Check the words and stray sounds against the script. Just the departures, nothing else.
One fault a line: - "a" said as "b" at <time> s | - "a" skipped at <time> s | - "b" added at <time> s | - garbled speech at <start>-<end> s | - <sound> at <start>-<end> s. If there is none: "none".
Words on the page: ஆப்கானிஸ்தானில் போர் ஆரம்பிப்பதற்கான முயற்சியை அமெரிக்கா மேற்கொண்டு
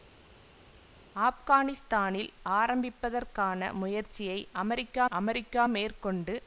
- "போர்" skipped at 2.3 s
- "அமெரிக்கா" added at 5.1 s